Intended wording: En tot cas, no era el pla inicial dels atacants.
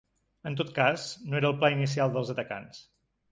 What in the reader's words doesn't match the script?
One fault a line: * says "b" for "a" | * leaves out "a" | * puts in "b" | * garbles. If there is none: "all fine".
all fine